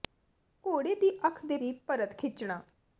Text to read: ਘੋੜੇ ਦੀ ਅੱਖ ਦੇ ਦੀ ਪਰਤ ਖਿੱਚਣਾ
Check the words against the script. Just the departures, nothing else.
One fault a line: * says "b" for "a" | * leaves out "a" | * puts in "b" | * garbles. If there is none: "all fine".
all fine